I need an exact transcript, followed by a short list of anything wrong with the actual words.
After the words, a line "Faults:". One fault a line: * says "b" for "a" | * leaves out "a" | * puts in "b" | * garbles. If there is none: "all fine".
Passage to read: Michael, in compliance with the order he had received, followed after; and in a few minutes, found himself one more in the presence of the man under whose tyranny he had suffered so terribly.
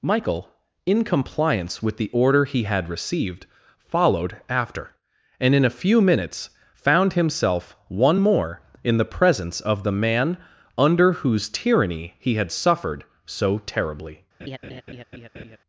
Michael, in compliance with the order he had received, followed after; and in a few minutes, found himself one more in the presence of the man under whose tyranny he had suffered so terribly.
Faults:
all fine